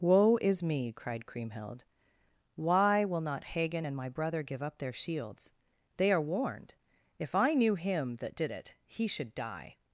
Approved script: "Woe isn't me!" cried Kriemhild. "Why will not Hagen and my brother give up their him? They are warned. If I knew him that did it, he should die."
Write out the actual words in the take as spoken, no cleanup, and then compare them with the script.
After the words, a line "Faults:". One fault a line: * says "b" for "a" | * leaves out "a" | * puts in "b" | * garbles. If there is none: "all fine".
"Woe is me!" cried Kriemhild. "Why will not Hagen and my brother give up their shields? They are warned. If I knew him that did it, he should die."
Faults:
* says "is" for "isn't"
* says "shields" for "him"